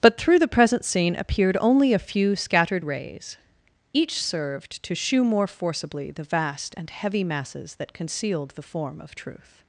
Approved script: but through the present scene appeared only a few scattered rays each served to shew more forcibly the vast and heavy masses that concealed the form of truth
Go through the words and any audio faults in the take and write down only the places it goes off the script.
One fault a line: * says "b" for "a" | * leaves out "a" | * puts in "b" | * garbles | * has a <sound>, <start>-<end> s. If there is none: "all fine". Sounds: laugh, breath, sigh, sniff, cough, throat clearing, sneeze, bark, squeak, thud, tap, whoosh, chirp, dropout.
all fine